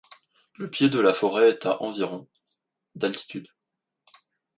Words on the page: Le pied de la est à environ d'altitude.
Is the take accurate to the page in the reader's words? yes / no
no